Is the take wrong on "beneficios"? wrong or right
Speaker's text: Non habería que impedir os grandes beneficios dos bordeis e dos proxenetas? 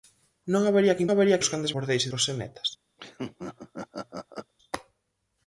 wrong